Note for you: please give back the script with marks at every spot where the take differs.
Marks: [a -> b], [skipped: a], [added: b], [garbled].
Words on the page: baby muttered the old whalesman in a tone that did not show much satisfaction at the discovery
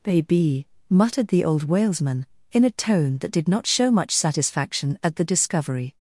baby muttered the old whalesman in a tone that did not show much satisfaction at the discovery